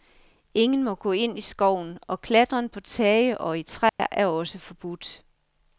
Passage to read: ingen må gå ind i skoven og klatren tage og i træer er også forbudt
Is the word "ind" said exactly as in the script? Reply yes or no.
yes